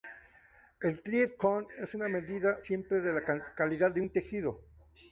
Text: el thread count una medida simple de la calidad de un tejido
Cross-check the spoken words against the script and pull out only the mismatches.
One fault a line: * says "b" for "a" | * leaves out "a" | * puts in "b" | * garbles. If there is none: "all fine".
* puts in "es"